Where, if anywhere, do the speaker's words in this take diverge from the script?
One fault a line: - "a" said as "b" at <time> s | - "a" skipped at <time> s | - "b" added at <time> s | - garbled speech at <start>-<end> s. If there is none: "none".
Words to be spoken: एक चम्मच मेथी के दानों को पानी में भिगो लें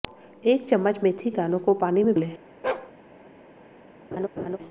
- "के" skipped at 1.3 s
- "भिगो" skipped at 2.1 s